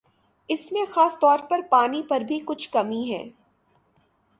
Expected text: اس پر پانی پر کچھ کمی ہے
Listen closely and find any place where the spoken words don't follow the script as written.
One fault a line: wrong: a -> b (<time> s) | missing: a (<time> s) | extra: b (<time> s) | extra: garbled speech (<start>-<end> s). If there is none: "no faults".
extra: میں خاص طور (0.7 s)
extra: بھی (2.2 s)